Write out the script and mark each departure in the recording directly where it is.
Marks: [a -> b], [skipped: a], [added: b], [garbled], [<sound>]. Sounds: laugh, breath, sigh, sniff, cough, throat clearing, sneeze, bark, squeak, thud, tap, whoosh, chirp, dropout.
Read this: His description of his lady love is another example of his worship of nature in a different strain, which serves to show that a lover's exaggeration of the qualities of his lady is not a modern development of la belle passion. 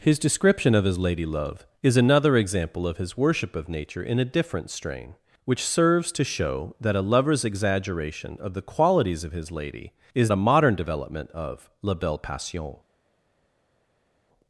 His description of his lady love is another example of his worship of nature in a different strain, which serves to show that a lover's exaggeration of the qualities of his lady is [skipped: not] a modern development of la belle passion.